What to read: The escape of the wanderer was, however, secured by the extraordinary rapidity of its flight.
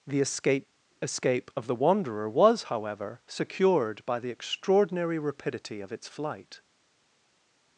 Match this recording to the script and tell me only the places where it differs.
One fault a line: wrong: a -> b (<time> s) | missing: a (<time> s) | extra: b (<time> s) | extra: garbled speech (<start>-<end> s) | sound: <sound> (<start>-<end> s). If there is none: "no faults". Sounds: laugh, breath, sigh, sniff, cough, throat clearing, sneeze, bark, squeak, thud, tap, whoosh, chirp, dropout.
extra: escape (1.0 s)